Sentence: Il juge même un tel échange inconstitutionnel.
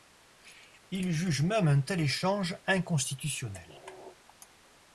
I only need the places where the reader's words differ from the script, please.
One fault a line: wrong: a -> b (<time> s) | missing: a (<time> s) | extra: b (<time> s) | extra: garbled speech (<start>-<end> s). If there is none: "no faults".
no faults